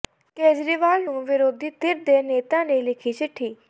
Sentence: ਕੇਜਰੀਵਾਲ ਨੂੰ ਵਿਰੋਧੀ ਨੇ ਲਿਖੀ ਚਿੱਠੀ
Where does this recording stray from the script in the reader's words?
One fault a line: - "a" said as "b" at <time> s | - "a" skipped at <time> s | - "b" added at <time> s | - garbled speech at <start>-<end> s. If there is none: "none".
- "ਧਿਰ ਦੇ ਨੇਤਾ" added at 1.8 s